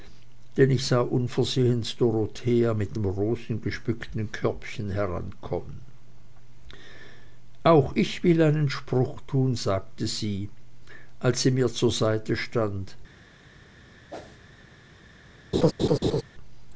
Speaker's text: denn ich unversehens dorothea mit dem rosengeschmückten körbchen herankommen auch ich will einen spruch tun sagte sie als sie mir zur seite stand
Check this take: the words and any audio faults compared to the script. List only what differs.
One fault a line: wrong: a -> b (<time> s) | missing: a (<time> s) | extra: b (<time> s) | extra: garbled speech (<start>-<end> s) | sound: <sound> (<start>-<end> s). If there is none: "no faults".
extra: sah (0.9 s)
sound: whoosh (14.1-14.4 s)
sound: laugh (15.5-16.2 s)